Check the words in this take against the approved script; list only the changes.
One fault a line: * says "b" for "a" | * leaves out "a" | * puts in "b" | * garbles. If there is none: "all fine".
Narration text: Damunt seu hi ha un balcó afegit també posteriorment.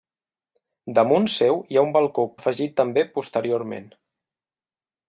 all fine